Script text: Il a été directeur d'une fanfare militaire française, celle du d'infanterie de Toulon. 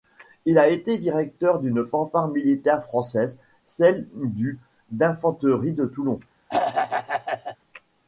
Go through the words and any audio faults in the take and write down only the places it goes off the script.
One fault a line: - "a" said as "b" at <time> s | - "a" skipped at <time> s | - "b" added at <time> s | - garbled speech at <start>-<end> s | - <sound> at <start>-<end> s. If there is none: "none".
- throat clearing at 6.5-7.6 s